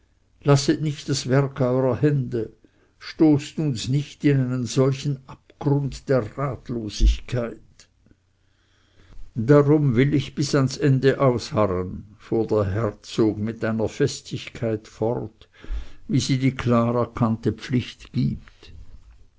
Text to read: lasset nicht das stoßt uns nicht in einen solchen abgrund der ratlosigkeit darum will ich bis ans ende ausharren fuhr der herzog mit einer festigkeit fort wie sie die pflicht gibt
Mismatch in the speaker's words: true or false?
true